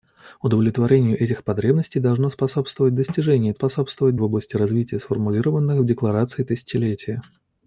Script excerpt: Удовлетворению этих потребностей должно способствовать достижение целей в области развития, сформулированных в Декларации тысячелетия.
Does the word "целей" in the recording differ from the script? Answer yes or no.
yes